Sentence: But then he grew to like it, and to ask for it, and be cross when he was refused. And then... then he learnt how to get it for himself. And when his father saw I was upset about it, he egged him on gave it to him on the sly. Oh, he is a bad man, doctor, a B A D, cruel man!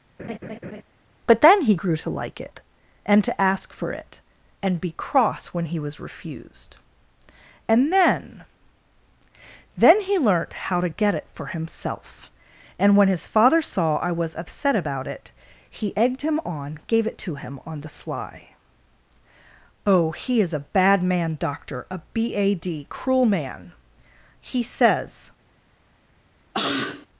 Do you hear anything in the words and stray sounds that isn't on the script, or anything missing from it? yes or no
yes